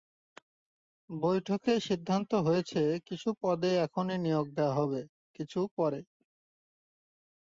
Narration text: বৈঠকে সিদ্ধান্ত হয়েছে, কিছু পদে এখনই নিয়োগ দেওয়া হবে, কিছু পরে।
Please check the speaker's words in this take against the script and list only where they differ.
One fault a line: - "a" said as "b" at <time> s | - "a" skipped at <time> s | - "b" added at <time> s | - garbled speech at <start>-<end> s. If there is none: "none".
none